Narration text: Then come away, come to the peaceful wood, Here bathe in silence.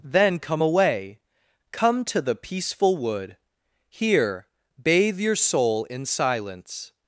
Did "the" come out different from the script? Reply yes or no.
no